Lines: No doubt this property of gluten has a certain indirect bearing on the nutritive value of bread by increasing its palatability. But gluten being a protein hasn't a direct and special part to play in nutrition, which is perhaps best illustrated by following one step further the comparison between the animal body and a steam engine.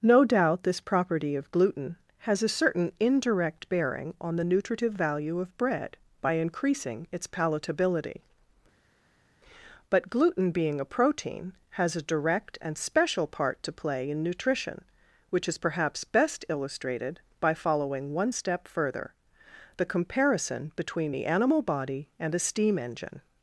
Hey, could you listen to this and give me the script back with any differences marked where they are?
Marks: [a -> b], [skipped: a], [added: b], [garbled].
No doubt this property of gluten has a certain indirect bearing on the nutritive value of bread by increasing its palatability. But gluten being a protein [hasn't -> has] a direct and special part to play in nutrition, which is perhaps best illustrated by following one step further the comparison between the animal body and a steam engine.